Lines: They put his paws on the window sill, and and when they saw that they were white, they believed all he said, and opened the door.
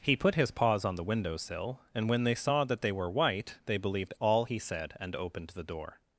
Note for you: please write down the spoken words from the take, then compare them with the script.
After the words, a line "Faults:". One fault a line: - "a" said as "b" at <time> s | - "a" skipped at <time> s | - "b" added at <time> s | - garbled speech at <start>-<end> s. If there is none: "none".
He put his paws on the window sill, and when they saw that they were white, they believed all he said, and opened the door.
Faults:
- "They" said as "He" at 0.0 s
- "and" skipped at 2.1 s